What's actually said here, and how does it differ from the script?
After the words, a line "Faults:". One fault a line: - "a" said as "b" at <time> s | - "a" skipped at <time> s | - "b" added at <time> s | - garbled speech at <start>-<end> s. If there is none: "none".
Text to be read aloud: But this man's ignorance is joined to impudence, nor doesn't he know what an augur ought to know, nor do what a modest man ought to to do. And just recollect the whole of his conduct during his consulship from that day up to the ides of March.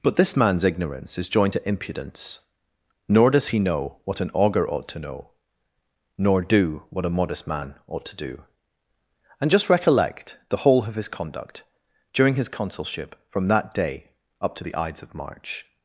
But this man's ignorance is joined to impudence, nor does he know what an augur ought to know, nor do what a modest man ought to do. And just recollect the whole of his conduct during his consulship from that day up to the ides of March.
Faults:
- "doesn't" said as "does" at 3.3 s
- "to" skipped at 8.2 s